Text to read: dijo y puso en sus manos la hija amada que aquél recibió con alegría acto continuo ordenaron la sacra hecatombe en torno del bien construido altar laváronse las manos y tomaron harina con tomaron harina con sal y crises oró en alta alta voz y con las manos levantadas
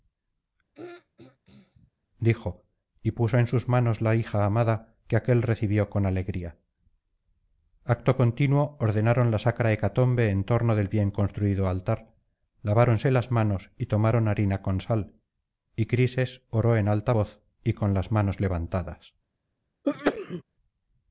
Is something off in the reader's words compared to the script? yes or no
yes